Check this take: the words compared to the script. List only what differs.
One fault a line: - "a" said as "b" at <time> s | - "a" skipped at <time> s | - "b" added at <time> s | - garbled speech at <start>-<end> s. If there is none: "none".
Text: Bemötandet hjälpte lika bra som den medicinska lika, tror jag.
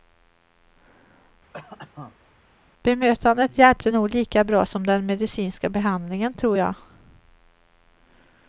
- "nog" added at 3.9 s
- "lika" said as "behandlingen" at 5.7 s